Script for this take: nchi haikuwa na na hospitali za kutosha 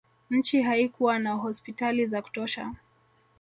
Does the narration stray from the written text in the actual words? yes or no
yes